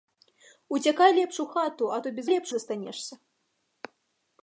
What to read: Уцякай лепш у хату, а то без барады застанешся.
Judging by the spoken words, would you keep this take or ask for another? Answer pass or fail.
fail